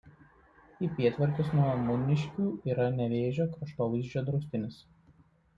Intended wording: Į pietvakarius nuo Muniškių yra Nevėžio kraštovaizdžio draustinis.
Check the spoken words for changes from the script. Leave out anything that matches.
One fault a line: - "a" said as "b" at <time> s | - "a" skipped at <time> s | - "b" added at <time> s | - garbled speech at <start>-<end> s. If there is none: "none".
none